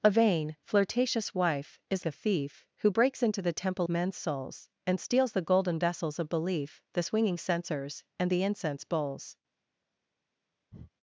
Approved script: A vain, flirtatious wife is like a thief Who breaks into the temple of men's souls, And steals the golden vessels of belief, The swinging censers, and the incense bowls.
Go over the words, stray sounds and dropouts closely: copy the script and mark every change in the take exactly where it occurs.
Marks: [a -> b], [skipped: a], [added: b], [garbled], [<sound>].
A vain, flirtatious wife is [skipped: like] a thief Who breaks into the temple [skipped: of] men's souls, And steals the golden vessels of belief, The swinging censers, and the incense bowls. [breath]